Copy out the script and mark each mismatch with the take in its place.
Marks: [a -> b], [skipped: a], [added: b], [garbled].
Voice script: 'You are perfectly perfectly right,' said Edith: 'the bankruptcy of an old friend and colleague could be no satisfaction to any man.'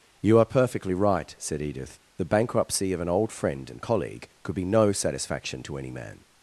'You are perfectly [skipped: perfectly] right,' said Edith: 'the bankruptcy of an old friend and colleague could be no satisfaction to any man.'